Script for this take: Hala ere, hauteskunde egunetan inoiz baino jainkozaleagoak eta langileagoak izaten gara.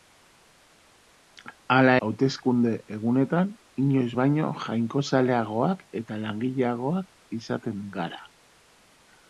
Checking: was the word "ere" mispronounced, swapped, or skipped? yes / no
yes